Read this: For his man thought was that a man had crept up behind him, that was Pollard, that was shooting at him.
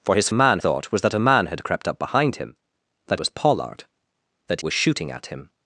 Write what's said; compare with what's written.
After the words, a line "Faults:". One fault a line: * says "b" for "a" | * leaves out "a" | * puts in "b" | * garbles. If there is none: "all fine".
For his man thought was that a man had crept up behind him, that was Pollard, that was shooting at him.
Faults:
all fine